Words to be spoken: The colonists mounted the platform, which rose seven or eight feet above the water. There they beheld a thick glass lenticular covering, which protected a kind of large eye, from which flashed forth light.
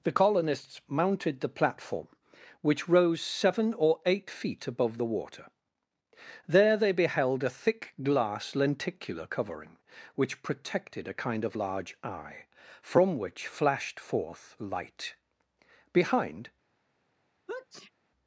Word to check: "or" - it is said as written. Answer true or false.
true